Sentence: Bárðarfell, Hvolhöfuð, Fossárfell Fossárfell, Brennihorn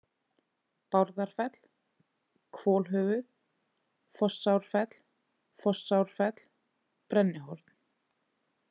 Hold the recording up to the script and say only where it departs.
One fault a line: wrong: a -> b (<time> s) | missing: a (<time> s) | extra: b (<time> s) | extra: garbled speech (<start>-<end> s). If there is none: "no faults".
no faults